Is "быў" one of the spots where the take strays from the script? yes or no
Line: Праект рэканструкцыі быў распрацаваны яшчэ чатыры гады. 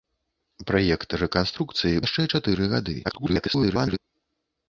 yes